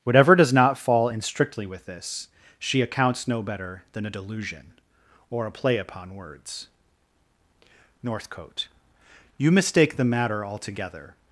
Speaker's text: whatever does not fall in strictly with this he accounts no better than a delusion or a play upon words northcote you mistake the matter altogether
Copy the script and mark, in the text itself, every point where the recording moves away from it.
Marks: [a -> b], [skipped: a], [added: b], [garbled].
whatever does not fall in strictly with this [he -> she] accounts no better than a delusion or a play upon words northcote you mistake the matter altogether